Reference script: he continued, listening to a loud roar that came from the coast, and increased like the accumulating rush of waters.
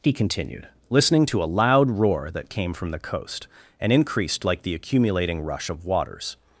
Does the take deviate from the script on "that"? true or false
false